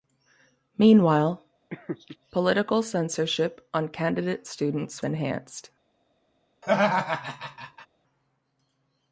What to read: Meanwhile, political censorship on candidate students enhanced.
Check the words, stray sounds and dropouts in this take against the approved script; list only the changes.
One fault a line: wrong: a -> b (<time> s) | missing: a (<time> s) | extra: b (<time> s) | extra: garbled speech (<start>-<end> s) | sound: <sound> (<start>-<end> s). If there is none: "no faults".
sound: laugh (1.7-2.2 s)
sound: laugh (6.6-7.9 s)